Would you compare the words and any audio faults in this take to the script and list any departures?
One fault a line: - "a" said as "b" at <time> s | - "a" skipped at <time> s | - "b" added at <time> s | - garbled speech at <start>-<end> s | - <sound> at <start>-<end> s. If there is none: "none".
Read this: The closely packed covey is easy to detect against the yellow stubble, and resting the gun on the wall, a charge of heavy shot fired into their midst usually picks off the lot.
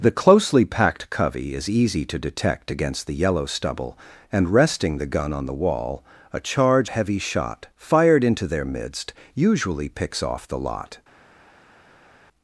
- "of" skipped at 6.9 s